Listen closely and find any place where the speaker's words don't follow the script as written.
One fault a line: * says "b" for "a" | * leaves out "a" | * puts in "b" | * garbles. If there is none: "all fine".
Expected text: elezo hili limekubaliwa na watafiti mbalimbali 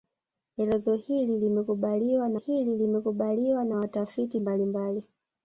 * puts in "hili limekubaliwa na"